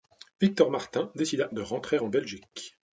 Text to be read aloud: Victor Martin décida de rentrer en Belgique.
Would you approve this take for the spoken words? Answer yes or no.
yes